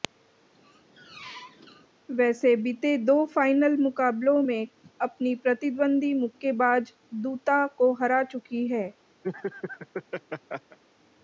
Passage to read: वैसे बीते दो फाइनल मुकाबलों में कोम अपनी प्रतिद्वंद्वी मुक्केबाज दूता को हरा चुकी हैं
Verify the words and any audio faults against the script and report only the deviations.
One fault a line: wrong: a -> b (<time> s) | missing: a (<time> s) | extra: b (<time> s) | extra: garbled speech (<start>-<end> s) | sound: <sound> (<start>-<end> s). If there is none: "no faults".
sound: squeak (0.5-1.9 s)
missing: कोम (4.7 s)
sound: laugh (9.2-10.8 s)